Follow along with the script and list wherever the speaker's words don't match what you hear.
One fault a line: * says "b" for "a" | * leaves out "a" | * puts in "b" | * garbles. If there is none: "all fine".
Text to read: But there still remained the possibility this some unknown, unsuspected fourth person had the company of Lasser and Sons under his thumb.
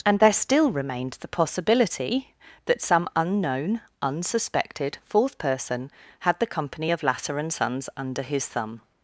* says "And" for "But"
* says "that" for "this"